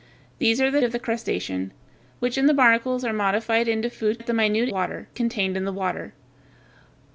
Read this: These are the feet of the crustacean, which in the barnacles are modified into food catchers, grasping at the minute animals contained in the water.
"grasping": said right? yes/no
no